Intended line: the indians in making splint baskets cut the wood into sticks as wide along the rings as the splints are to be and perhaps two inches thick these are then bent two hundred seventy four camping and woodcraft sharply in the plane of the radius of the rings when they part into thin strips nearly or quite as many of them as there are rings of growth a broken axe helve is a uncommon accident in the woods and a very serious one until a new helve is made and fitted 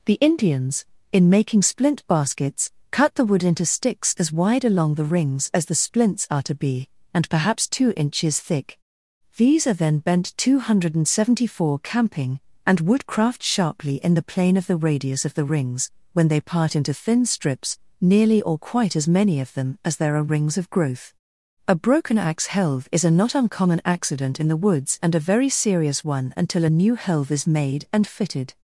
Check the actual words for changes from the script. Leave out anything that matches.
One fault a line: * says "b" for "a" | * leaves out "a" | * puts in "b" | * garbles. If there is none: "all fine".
* puts in "not"